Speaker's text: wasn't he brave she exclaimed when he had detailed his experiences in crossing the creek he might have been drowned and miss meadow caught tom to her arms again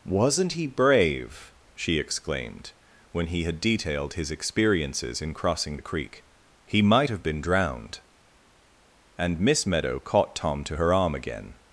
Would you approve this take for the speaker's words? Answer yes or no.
no